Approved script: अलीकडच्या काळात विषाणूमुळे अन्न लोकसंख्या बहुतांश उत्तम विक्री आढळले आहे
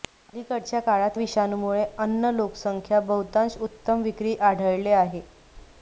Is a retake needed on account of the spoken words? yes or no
no